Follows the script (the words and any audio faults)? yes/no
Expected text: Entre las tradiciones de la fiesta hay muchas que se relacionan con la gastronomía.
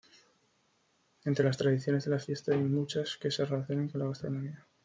yes